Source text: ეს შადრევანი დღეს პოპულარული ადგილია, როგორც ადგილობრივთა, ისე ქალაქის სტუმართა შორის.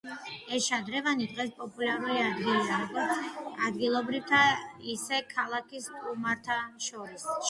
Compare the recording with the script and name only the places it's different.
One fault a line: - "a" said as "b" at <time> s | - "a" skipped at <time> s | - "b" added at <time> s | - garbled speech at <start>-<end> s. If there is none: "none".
none